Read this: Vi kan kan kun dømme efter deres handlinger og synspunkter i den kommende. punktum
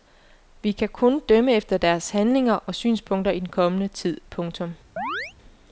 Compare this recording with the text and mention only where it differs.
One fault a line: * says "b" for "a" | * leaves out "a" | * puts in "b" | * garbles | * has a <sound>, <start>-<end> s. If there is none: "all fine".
* leaves out "kan"
* puts in "tid"
* has a chirp, 5.0-5.3 s